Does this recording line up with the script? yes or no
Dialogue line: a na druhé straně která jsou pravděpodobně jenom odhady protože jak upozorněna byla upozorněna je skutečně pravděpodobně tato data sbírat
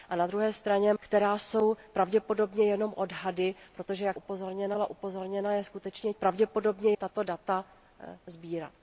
yes